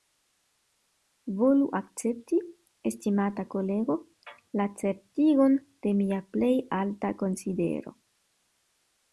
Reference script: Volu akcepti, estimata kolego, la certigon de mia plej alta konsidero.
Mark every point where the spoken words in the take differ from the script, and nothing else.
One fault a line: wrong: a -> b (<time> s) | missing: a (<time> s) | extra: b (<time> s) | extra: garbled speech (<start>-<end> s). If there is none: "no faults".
no faults